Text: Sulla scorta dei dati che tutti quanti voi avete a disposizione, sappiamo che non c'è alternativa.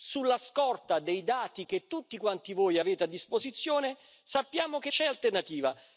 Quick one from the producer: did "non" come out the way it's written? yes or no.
no